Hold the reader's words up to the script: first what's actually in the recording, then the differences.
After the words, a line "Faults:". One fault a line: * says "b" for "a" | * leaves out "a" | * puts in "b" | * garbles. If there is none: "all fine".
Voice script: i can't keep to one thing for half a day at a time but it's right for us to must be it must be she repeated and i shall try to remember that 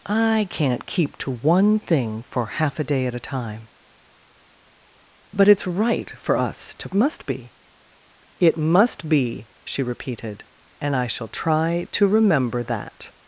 i can't keep to one thing for half a day at a time but it's right for us to must be it must be she repeated and i shall try to remember that
Faults:
all fine